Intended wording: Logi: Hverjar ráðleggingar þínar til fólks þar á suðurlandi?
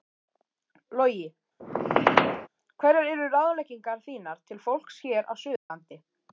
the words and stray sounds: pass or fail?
fail